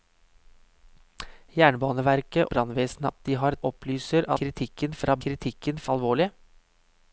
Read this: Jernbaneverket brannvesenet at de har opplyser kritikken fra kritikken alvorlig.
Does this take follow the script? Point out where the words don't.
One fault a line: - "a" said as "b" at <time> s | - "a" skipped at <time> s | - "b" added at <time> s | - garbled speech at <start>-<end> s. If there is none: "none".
none